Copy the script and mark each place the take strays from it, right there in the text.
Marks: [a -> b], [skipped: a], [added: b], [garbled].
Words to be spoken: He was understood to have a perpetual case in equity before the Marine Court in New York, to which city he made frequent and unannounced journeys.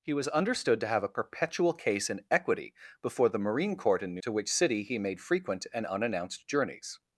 He was understood to have a perpetual case in equity before the Marine Court in New [skipped: York,] to which city he made frequent and unannounced journeys.